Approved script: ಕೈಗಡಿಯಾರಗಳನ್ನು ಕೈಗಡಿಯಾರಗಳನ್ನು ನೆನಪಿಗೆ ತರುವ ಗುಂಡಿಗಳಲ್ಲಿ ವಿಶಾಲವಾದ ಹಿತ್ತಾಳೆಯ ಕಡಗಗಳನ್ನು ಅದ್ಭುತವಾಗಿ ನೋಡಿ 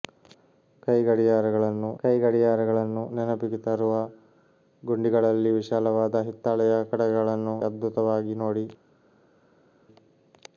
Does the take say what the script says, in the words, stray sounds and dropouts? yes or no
yes